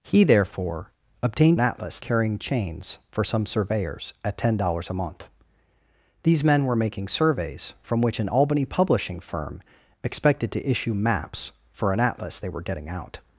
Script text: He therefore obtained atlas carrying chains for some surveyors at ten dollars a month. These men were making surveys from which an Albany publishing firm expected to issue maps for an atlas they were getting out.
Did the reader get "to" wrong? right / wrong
right